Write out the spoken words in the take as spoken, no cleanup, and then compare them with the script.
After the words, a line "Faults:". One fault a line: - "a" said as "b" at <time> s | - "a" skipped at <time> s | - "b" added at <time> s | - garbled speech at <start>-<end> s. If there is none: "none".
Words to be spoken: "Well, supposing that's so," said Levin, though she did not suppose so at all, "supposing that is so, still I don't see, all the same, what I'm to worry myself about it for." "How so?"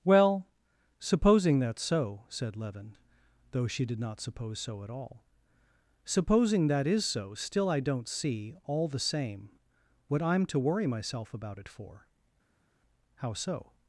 "Well, supposing that's so," said Levin, though she did not suppose so at all, "supposing that is so, still I don't see, all the same, what I'm to worry myself about it for." "How so?"
Faults:
none